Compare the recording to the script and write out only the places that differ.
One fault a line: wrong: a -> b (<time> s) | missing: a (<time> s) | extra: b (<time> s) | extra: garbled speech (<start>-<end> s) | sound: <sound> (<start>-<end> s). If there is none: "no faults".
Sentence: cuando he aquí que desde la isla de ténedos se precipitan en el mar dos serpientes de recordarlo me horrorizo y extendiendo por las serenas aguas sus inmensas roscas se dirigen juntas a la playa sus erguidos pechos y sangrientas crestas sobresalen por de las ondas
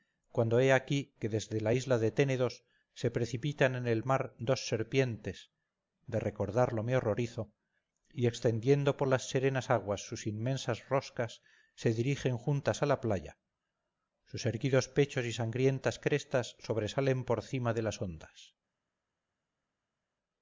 extra: cima (17.4 s)